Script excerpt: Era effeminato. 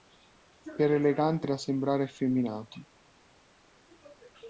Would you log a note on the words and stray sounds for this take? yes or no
yes